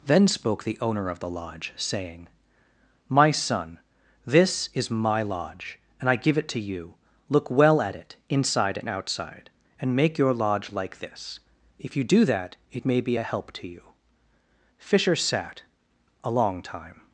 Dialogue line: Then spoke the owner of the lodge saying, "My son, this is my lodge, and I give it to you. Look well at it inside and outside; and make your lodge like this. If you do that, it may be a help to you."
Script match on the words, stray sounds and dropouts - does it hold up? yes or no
no